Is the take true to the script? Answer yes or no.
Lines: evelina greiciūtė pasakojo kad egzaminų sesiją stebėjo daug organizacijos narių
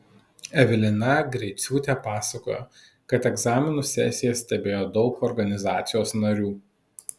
yes